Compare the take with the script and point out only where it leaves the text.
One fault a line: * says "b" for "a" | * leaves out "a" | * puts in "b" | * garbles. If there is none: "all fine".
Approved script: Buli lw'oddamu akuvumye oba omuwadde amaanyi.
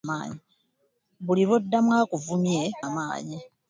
* leaves out "oba omuwadde"